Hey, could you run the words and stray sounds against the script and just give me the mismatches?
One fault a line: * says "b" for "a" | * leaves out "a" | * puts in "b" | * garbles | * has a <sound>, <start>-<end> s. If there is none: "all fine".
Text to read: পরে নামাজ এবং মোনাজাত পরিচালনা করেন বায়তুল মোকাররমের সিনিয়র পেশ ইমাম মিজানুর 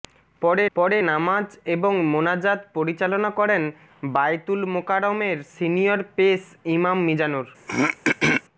* puts in "পরে"
* has a throat clearing, 7.7-8.4 s